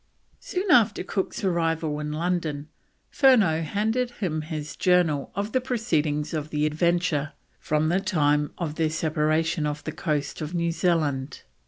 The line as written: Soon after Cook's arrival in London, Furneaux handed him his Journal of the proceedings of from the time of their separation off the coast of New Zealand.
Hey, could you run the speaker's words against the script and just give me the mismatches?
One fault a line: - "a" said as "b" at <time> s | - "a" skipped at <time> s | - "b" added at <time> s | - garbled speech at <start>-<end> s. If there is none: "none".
- "the Adventure" added at 6.5 s